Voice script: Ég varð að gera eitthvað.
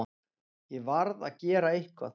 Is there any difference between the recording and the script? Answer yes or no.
no